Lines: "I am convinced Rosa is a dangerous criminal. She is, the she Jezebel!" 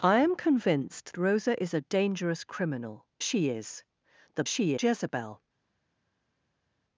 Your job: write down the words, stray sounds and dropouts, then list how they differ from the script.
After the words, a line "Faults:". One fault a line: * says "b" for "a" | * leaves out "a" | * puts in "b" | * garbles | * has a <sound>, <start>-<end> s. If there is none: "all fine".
"I am convinced Rosa is a dangerous criminal. She is, the she Jezebel!"
Faults:
all fine